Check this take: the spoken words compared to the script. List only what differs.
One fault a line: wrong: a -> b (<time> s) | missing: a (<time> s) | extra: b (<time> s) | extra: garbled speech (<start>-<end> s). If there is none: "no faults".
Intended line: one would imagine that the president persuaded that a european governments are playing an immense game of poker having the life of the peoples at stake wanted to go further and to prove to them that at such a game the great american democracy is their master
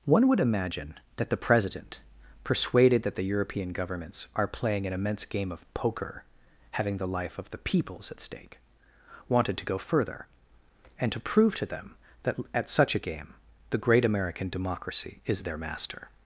wrong: a -> the (3.1 s)